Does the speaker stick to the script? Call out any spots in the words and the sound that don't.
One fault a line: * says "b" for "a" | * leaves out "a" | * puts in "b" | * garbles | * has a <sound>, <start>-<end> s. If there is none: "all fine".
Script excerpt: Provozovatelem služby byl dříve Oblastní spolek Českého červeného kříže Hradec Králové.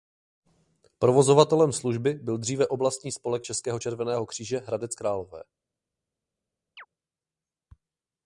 * has a chirp, 6.8-6.9 s